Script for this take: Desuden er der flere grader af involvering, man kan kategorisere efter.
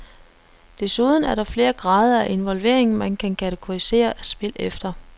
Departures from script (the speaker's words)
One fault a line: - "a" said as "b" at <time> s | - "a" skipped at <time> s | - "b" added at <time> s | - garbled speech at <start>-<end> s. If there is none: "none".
- "spil" added at 4.2 s